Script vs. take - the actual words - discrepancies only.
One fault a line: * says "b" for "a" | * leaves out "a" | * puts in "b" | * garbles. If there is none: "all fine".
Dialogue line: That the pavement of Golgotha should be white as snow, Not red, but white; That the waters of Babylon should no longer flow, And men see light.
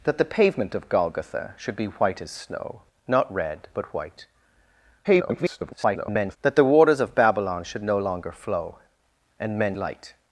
* garbles
* leaves out "see"